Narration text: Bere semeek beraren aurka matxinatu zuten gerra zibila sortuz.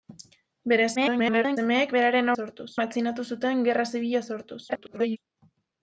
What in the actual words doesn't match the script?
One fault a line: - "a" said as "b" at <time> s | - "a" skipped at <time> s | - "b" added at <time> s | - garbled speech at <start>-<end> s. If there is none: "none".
- garbled speech at 1.0-1.6 s
- "aurka" said as "sortuz" at 2.4 s
- garbled speech at 4.7-5.2 s